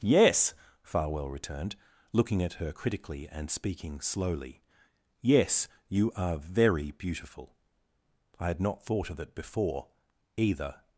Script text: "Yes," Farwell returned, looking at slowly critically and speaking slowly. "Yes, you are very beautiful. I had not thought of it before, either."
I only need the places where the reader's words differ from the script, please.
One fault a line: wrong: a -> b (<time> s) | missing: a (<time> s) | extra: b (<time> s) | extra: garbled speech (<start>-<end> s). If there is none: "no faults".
wrong: slowly -> her (2.5 s)